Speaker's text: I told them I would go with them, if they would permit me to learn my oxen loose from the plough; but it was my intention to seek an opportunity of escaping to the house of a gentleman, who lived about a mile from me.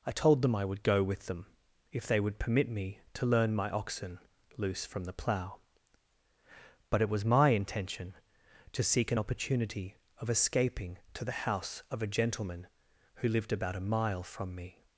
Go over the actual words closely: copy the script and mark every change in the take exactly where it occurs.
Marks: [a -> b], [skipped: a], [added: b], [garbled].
I told them I would go with them, if they would permit me to learn my oxen loose from the plough; but it was my intention to seek an opportunity of escaping to the house of a gentleman, who lived about a mile from me.